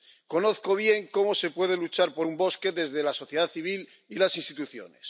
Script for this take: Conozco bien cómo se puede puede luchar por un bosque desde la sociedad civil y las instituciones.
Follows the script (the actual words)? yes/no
no